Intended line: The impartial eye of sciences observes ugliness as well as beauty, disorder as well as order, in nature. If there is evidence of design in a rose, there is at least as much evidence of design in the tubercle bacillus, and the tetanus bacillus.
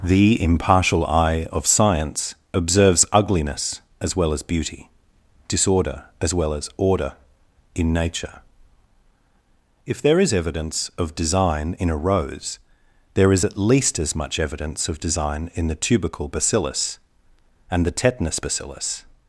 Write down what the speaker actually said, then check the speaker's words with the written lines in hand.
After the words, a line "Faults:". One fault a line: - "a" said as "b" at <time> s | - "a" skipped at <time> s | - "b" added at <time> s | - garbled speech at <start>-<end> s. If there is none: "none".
The impartial eye of science observes ugliness as well as beauty, disorder as well as order, in nature. If there is evidence of design in a rose, there is at least as much evidence of design in the tubercle bacillus, and the tetanus bacillus.
Faults:
- "sciences" said as "science" at 1.7 s